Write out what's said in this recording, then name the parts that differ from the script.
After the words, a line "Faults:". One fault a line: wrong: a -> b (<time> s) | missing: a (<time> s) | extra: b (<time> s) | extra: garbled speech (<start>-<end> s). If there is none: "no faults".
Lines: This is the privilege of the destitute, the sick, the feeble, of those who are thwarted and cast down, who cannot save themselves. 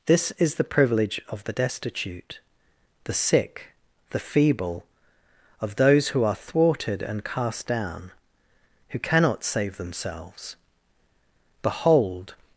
This is the privilege of the destitute, the sick, the feeble, of those who are thwarted and cast down, who cannot save themselves. Behold
Faults:
extra: Behold (11.6 s)